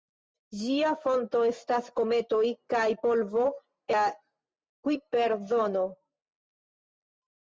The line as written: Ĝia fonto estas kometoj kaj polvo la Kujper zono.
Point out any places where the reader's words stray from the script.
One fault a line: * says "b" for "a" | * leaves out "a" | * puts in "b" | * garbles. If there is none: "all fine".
all fine